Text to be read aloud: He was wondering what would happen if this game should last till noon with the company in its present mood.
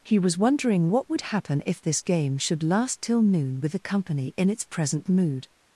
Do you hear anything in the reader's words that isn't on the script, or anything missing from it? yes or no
no